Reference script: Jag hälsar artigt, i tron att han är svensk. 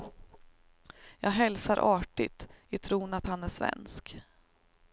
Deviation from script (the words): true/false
false